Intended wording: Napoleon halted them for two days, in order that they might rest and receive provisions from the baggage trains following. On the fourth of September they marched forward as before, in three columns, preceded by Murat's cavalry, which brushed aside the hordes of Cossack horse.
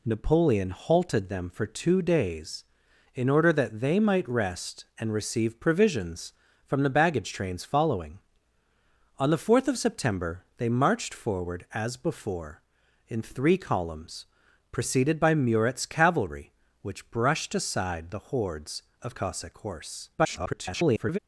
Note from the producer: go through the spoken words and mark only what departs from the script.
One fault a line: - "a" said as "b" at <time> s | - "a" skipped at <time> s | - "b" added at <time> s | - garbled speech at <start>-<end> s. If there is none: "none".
- garbled speech at 20.2-21.2 s